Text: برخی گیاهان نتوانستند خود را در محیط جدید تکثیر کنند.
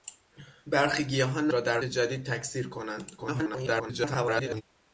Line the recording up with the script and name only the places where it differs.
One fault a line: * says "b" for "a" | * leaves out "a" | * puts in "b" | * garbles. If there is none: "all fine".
* leaves out "نتوانستند خود"
* leaves out "محیط"
* garbles